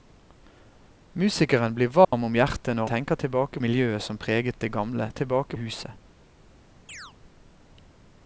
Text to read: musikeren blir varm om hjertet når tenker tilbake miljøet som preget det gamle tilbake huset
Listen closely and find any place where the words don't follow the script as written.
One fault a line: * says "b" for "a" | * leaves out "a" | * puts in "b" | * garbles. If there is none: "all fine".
all fine